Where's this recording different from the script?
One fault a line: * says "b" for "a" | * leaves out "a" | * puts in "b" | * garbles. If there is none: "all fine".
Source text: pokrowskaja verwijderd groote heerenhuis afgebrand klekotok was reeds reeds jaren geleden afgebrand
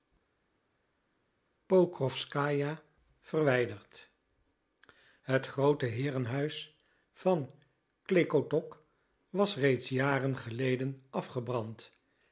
* puts in "het"
* says "van" for "afgebrand"
* leaves out "reeds"